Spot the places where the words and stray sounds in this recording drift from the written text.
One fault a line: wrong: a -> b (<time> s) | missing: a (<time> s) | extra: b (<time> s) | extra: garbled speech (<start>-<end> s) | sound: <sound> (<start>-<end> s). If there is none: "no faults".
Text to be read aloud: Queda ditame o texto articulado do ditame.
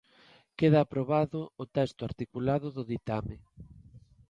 wrong: ditame -> aprobado (0.8 s)